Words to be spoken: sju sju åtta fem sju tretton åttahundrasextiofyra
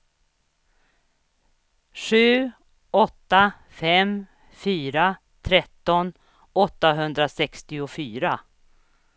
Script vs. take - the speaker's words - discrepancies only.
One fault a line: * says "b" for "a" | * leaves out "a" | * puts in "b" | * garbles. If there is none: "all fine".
* leaves out "sju"
* says "fyra" for "sju"